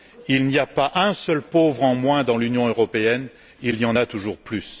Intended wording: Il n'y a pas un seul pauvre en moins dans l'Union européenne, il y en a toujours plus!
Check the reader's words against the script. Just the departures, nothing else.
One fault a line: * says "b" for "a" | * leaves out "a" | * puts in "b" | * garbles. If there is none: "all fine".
all fine